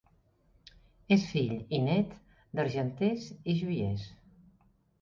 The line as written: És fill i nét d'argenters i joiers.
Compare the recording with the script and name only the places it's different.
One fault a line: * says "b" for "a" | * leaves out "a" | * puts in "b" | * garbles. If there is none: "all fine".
all fine